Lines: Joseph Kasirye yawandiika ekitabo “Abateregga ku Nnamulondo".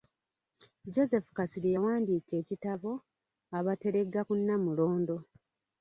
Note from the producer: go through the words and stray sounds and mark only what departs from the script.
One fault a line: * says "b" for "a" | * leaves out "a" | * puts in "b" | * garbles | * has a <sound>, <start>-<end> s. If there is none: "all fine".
all fine